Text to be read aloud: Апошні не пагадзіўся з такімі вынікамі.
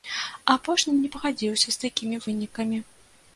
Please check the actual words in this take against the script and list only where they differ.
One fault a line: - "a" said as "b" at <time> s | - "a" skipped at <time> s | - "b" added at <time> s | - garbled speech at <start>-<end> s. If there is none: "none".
none